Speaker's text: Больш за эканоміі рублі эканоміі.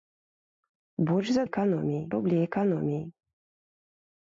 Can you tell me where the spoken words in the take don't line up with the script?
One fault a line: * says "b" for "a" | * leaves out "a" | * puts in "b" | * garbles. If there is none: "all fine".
all fine